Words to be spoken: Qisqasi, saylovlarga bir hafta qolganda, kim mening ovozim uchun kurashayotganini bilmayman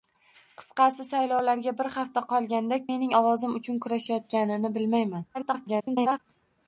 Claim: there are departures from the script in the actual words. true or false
true